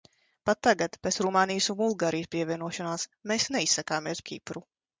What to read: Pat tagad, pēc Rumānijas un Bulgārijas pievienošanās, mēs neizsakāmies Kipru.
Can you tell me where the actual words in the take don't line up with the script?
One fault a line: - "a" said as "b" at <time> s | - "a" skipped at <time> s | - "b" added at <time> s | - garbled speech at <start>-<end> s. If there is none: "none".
none